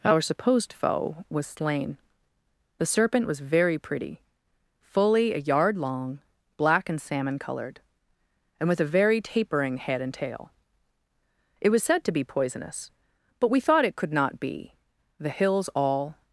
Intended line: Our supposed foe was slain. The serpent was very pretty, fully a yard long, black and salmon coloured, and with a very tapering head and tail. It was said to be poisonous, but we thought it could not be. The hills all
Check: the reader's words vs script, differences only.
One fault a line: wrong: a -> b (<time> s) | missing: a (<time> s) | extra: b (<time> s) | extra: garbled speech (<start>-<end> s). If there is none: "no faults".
no faults